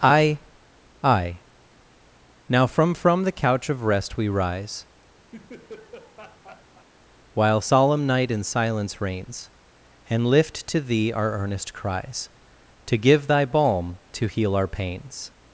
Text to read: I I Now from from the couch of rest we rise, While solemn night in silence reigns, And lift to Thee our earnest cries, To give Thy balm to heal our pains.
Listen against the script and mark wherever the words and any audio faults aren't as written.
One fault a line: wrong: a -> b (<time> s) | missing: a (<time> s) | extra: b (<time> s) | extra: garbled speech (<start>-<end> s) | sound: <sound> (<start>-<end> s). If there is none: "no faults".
sound: laugh (5.3-6.9 s)